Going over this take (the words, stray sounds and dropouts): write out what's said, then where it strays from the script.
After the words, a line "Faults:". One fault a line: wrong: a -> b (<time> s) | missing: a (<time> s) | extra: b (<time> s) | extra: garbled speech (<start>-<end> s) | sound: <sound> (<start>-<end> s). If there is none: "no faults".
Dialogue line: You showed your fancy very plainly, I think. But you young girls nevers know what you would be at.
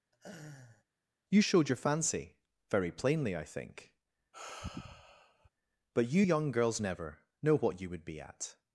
You showed your fancy very plainly, I think. But you young girls never know what you would be at.
Faults:
sound: laugh (0.1-0.8 s)
sound: sigh (4.3-5.5 s)
wrong: nevers -> never (6.8 s)